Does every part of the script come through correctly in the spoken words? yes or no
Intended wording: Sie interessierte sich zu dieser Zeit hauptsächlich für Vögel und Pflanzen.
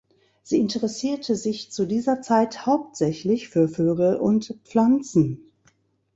yes